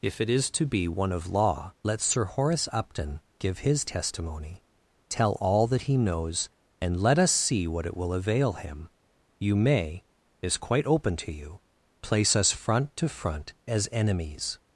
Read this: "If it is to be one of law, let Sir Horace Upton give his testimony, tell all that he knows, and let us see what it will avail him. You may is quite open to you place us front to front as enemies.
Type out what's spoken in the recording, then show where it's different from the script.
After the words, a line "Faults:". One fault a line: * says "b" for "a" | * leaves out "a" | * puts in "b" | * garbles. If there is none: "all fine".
"If it is to be one of law, let Sir Horace Upton give his testimony, tell all that he knows, and let us see what it will avail him. You may is quite open to you place us front to front as enemies.
Faults:
all fine